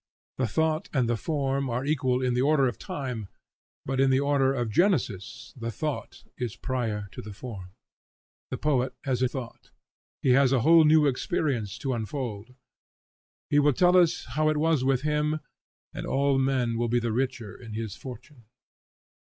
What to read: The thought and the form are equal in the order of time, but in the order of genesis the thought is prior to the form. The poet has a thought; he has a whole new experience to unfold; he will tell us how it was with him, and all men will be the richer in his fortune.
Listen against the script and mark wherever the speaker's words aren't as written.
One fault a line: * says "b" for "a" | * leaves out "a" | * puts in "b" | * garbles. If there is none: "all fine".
all fine